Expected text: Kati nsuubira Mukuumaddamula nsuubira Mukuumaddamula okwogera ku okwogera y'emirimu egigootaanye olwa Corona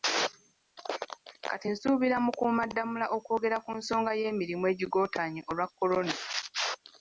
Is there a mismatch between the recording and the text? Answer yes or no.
yes